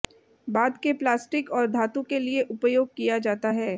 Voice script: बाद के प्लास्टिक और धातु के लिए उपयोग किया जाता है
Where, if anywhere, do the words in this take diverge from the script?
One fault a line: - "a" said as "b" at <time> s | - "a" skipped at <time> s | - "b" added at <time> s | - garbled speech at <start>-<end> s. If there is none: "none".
none